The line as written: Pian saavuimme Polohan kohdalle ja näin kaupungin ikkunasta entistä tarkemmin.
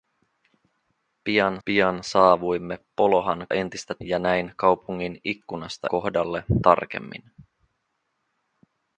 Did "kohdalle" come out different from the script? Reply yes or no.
yes